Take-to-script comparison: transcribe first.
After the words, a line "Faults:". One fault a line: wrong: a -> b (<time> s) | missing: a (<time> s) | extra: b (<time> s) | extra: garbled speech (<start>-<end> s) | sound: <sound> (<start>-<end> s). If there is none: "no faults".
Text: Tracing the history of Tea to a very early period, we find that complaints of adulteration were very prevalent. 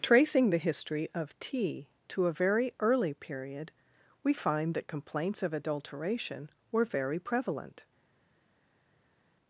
Tracing the history of Tea to a very early period, we find that complaints of adulteration were very prevalent.
Faults:
no faults